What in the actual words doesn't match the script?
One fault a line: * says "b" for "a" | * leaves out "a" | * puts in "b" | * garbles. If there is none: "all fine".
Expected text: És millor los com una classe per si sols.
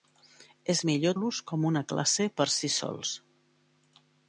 all fine